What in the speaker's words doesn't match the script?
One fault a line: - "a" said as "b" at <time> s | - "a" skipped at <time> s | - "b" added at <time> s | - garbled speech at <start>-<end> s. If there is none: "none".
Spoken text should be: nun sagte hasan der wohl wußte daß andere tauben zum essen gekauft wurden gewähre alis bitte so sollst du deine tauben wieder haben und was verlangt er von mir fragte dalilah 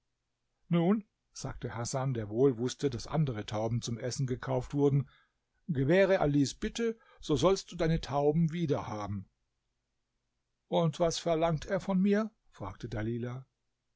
none